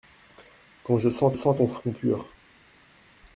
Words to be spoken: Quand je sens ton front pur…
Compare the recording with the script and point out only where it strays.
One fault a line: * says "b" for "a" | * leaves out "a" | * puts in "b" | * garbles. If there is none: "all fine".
* puts in "sens"